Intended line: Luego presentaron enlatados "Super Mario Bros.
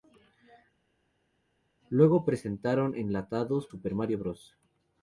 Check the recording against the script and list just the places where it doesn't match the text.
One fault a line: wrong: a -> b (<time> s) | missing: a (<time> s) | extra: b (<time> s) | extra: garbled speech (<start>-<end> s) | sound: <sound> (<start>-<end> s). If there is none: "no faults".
no faults